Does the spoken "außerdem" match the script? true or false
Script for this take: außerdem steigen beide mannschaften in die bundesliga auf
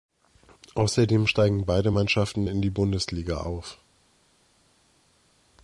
true